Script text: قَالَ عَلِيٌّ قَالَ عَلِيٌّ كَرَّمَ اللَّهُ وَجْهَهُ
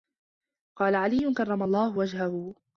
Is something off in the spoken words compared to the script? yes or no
yes